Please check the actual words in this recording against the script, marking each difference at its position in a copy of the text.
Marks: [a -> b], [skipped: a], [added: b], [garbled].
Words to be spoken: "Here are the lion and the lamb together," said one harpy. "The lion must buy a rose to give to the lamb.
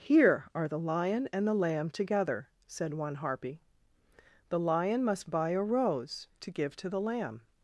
"Here are the lion and the lamb together," said one harpy. "The lion must buy a rose to give to the lamb.